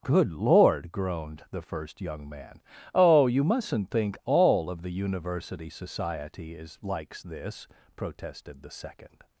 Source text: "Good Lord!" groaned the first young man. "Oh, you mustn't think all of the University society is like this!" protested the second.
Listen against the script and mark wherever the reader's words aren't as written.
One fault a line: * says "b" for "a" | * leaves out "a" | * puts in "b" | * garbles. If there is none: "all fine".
* says "likes" for "like"